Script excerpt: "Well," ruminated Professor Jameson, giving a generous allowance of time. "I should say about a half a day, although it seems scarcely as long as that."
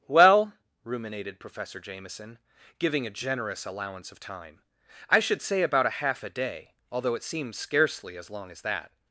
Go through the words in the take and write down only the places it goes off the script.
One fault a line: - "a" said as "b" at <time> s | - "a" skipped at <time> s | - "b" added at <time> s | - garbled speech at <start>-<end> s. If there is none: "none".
none